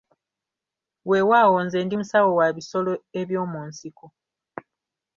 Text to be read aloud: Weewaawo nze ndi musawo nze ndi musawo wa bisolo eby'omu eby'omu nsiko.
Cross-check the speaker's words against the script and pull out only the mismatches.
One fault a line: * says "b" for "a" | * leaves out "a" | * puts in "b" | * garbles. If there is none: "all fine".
* leaves out "nze ndi musawo"
* leaves out "eby'omu"